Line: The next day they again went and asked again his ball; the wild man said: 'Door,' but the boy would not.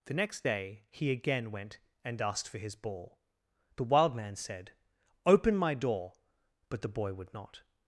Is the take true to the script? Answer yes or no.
no